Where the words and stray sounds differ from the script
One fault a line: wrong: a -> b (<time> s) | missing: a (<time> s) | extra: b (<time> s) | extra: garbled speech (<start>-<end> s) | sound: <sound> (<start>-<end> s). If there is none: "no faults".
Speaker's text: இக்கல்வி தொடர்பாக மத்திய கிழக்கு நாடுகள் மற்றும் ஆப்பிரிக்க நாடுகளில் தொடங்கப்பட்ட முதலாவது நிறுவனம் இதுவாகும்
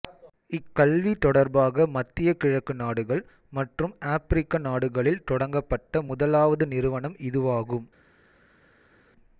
no faults